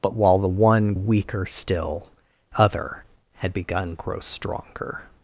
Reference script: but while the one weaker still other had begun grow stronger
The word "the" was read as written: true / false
true